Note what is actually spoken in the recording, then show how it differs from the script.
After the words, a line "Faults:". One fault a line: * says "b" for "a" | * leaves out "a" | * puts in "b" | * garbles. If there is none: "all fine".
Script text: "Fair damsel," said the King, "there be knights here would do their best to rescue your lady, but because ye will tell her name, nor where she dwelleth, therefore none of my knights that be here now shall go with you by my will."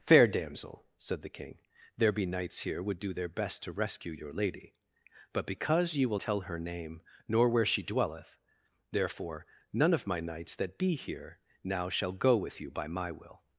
"Fair damsel," said the King, "there be knights here would do their best to rescue your lady, but because ye will tell her name, nor where she dwelleth, therefore none of my knights that be here now shall go with you by my will."
Faults:
all fine